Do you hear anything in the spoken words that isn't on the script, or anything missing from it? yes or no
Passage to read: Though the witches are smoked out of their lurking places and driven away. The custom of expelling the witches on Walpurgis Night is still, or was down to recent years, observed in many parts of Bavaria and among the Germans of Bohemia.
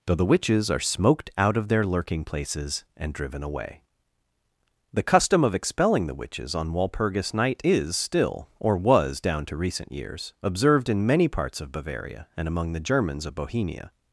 no